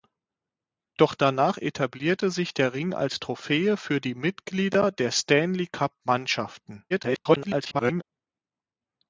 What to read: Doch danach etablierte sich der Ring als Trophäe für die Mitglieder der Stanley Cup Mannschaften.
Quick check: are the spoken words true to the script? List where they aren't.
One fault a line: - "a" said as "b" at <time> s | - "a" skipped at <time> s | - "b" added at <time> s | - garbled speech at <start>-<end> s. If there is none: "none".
- garbled speech at 6.9-8.0 s